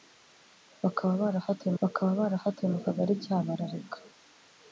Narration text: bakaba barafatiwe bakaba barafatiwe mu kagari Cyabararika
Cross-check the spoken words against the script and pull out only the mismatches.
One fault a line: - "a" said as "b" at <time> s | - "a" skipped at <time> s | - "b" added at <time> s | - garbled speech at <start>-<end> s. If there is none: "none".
none